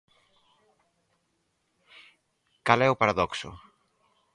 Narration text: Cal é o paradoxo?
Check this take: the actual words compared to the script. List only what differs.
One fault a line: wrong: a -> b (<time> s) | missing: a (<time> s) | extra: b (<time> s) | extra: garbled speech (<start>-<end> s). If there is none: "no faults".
no faults